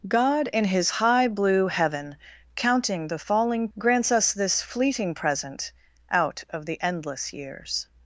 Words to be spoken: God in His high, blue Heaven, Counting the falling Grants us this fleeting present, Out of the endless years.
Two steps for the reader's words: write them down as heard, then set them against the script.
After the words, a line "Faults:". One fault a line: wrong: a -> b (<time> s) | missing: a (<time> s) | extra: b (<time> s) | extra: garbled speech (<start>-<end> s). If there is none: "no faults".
God in His high, blue Heaven, Counting the falling Grants us this fleeting present, Out of the endless years.
Faults:
no faults